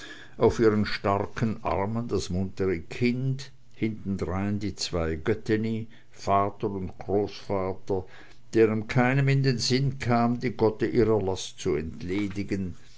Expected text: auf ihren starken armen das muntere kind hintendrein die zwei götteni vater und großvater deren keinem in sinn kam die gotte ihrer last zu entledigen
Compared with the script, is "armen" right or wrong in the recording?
right